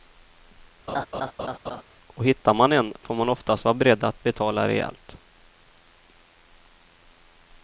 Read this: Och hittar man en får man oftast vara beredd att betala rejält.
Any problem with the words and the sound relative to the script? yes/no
yes